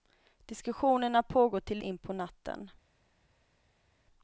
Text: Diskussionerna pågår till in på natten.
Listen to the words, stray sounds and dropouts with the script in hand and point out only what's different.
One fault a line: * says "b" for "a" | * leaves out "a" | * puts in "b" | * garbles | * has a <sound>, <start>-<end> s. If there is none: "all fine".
all fine